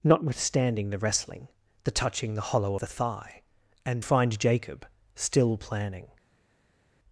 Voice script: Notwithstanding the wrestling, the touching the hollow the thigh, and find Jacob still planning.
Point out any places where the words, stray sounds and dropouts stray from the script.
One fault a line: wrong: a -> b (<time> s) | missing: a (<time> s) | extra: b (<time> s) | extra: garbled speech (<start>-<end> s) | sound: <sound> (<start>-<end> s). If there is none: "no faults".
no faults